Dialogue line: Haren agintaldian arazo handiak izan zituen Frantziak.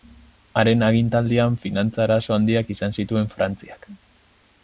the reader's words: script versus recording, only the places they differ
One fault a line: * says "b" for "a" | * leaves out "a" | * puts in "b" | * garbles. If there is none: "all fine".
* puts in "finantza"